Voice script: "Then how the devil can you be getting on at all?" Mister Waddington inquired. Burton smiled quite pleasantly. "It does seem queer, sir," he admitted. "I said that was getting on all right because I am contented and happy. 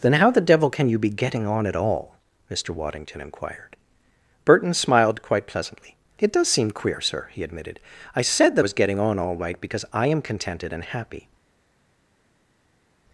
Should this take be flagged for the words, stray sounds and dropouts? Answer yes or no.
no